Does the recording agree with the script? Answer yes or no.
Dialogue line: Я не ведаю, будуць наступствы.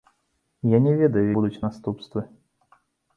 yes